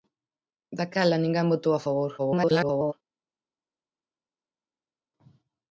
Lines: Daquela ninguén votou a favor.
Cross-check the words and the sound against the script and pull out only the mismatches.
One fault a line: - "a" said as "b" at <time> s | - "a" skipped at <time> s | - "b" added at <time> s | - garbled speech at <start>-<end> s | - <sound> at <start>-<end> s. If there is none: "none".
- garbled speech at 2.2-2.9 s